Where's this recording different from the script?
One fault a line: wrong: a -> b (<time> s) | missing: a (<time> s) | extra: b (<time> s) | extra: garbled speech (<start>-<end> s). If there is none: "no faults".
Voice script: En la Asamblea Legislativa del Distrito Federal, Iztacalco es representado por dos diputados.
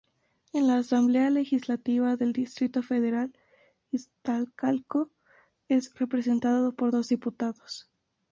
no faults